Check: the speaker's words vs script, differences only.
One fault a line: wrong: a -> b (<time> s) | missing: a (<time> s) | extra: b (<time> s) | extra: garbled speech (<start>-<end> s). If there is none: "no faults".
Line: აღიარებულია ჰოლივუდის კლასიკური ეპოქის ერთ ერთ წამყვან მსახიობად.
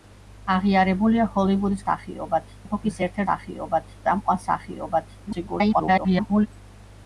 wrong: კლასიკური -> მსახიობად (1.8 s)
wrong: ერთ -> მსახიობად (3.2 s)
extra: garbled speech (5.3-6.5 s)